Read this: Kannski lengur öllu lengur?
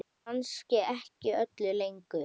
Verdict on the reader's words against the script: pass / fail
fail